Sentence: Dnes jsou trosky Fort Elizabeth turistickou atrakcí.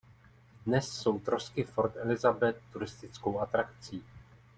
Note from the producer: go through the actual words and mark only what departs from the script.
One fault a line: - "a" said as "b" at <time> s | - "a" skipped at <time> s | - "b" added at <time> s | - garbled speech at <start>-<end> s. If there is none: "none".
none